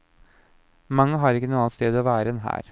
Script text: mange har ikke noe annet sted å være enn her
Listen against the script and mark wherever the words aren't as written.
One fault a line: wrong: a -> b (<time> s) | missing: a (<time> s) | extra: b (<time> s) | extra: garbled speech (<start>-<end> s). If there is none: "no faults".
no faults